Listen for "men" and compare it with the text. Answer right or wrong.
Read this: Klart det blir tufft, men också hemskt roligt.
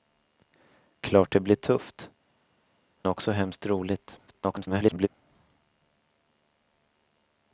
wrong